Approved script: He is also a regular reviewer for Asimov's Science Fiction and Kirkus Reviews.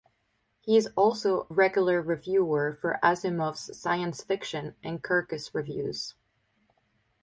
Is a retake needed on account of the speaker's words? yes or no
yes